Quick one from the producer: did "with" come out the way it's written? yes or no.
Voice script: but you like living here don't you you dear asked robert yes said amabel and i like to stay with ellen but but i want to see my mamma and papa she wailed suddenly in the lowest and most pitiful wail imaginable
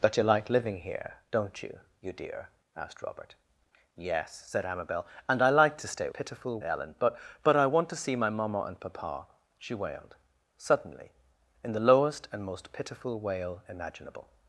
no